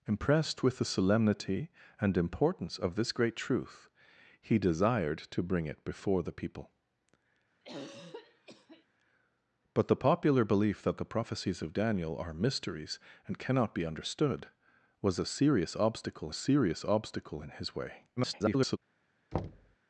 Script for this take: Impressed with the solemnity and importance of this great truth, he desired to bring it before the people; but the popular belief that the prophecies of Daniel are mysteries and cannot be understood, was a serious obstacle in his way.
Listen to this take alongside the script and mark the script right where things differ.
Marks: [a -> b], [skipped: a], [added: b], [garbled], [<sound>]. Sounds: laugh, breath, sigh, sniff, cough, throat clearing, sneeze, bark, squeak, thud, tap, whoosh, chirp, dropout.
Impressed with the solemnity and importance of this great truth, he desired to bring it before the people; [throat clearing] but the popular belief that the prophecies of Daniel are mysteries and cannot be understood, was a serious obstacle [added: serious obstacle] in his way. [garbled] [thud]